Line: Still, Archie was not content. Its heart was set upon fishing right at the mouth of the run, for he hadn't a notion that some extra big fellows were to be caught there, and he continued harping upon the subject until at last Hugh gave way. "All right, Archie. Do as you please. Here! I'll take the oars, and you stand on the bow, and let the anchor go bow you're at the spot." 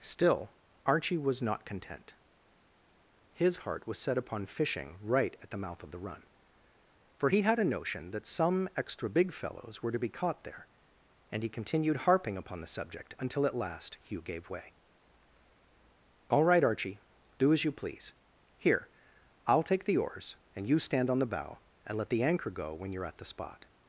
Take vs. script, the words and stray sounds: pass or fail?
fail